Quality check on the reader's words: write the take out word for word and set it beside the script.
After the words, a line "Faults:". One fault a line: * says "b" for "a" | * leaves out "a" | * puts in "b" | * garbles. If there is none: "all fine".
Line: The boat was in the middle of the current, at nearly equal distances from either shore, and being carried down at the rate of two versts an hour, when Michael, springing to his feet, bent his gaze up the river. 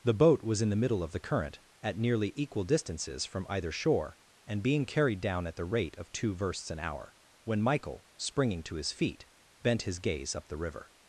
The boat was in the middle of the current, at nearly equal distances from either shore, and being carried down at the rate of two versts an hour, when Michael, springing to his feet, bent his gaze up the river.
Faults:
all fine